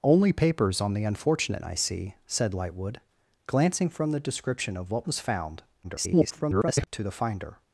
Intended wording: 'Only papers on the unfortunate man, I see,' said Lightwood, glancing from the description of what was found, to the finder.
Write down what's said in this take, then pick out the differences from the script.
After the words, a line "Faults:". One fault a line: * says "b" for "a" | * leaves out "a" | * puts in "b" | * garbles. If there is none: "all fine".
'Only papers on the unfortunate I see,' said Lightwood, glancing from the description of what was found, [garbled] to the finder.
Faults:
* leaves out "man"
* garbles